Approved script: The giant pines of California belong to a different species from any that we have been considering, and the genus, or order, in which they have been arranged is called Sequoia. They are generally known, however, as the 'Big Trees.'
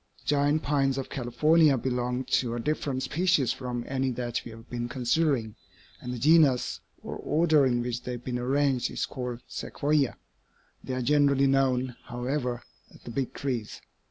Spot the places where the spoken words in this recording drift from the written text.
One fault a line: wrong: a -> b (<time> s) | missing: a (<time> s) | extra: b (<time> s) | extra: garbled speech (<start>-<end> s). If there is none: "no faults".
no faults